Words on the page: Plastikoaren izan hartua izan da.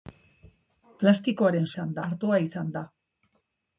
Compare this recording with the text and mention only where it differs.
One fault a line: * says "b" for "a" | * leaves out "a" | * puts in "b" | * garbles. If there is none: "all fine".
all fine